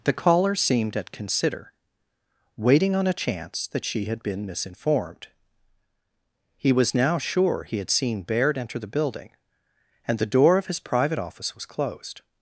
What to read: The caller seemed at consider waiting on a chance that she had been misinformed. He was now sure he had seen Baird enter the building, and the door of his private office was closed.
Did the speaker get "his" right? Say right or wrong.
right